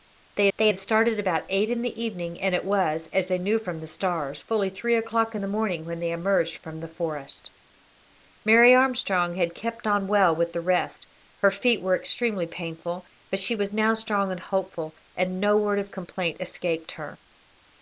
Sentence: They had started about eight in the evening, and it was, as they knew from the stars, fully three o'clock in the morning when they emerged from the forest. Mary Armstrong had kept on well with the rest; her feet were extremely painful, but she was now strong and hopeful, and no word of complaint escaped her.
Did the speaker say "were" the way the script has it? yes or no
yes